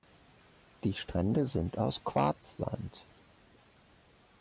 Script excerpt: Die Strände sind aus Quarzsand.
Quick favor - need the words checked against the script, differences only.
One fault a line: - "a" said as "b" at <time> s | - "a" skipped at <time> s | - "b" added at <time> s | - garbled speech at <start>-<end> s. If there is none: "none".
none